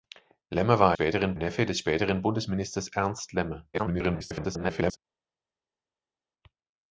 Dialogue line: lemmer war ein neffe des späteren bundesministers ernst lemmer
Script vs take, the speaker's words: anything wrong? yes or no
yes